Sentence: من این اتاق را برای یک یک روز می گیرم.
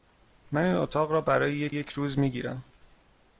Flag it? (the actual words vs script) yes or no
no